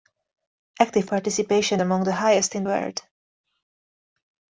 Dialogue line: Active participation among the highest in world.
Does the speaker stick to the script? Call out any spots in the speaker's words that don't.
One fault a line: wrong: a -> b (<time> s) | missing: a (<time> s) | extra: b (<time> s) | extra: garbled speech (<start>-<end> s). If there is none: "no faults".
no faults